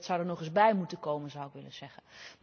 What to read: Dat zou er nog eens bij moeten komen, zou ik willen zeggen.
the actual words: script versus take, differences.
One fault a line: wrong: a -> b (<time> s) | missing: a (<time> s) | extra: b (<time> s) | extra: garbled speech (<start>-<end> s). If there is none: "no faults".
no faults